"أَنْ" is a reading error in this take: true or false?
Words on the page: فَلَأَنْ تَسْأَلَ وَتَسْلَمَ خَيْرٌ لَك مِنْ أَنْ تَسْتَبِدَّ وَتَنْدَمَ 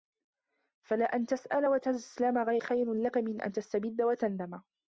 false